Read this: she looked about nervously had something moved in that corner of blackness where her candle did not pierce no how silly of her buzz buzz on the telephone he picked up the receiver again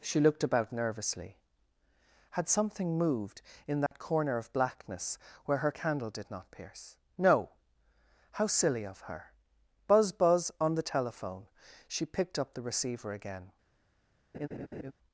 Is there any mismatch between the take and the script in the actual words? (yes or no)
yes